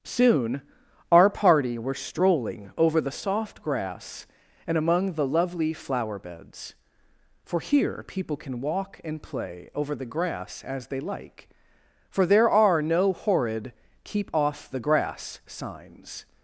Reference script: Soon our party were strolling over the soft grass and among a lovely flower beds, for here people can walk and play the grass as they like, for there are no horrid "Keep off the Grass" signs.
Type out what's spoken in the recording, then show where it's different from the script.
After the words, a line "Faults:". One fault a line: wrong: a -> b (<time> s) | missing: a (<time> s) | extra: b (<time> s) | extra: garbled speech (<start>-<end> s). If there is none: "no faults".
Soon our party were strolling over the soft grass and among the lovely flower beds, for here people can walk and play over the grass as they like, for there are no horrid "Keep off the Grass" signs.
Faults:
wrong: a -> the (5.1 s)
extra: over (9.8 s)